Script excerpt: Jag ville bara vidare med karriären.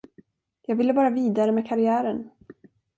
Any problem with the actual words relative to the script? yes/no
no